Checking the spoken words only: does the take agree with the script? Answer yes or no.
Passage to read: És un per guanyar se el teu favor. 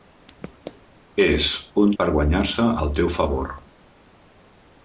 yes